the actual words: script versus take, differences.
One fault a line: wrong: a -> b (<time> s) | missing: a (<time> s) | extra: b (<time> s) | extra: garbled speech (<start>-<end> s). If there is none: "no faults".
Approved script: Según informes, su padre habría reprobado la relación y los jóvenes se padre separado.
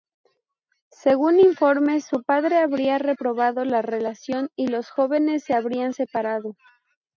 wrong: padre -> habrían (5.5 s)